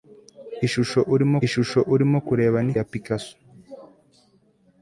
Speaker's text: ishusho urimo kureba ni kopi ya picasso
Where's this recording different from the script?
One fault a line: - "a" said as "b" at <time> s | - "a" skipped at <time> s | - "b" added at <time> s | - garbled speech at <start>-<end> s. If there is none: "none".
- "ishusho urimo" added at 1.4 s
- "kopi" skipped at 2.7 s